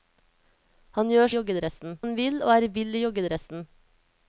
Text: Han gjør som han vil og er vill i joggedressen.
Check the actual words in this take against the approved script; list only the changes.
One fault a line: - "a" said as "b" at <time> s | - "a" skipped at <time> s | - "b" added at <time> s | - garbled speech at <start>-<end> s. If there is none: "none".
- "som" said as "joggedressen" at 1.3 s